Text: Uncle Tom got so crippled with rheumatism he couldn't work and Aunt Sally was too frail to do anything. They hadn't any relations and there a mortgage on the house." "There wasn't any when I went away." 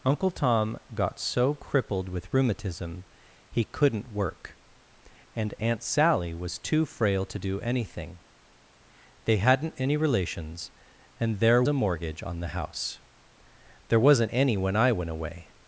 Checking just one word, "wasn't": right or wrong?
right